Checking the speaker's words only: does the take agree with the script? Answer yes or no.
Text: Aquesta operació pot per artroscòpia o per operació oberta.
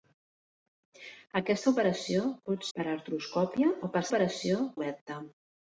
yes